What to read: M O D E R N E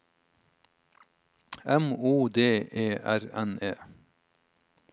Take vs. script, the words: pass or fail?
pass